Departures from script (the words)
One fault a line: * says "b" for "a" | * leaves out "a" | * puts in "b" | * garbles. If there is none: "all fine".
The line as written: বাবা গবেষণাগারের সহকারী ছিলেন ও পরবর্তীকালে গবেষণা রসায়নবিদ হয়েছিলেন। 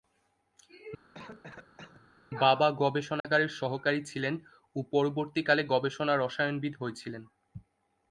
all fine